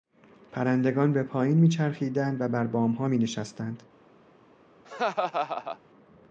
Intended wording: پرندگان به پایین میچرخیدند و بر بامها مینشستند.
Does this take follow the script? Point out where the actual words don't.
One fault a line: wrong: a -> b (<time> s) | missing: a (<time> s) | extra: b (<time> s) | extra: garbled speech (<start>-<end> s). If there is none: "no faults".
no faults